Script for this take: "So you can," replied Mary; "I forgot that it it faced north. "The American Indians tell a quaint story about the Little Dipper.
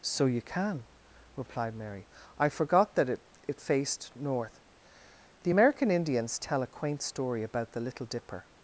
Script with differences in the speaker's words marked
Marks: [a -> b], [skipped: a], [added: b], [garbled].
"So you can," replied Mary; "I forgot that it it faced north. "The American Indians tell a quaint story about the Little Dipper.